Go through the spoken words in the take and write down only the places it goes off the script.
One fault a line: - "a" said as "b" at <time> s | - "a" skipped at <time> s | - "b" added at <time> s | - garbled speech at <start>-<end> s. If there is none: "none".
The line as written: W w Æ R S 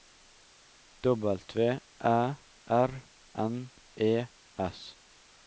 - "w" skipped at 1.4 s
- "N E" added at 3.4 s